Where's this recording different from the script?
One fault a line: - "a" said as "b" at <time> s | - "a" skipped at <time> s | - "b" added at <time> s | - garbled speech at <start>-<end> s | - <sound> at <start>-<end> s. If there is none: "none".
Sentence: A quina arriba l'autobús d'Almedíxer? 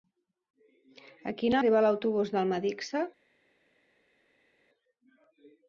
none